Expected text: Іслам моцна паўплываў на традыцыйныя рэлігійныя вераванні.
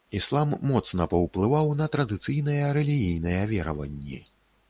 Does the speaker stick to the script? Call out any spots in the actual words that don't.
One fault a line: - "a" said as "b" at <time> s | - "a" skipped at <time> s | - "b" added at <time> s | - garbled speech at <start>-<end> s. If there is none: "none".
none